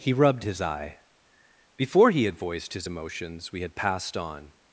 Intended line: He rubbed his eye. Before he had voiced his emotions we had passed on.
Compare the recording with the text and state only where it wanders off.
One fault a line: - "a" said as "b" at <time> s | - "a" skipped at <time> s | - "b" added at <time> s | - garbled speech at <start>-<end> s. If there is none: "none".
none